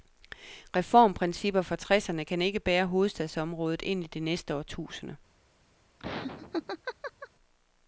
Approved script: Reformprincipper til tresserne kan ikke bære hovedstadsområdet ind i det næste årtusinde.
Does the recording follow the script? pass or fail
fail